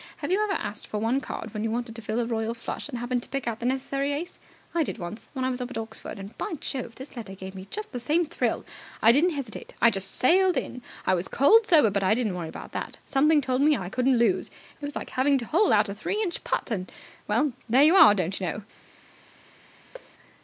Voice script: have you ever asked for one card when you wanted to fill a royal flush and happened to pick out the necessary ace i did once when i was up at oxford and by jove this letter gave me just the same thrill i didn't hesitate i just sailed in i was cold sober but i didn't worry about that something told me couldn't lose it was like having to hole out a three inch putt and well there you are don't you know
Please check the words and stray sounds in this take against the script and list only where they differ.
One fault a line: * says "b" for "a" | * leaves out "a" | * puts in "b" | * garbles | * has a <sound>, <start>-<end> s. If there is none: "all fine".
* puts in "i"
* has a thud, 19.9-20.1 s